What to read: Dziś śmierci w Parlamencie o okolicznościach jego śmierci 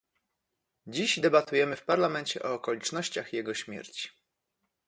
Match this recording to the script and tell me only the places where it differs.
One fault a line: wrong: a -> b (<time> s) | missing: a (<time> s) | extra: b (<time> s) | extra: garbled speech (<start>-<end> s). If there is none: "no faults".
wrong: śmierci -> debatujemy (1.2 s)